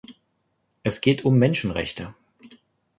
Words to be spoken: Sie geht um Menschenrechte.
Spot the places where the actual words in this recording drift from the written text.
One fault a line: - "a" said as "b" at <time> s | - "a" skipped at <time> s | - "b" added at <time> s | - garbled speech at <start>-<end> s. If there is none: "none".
- "Sie" said as "Es" at 0.8 s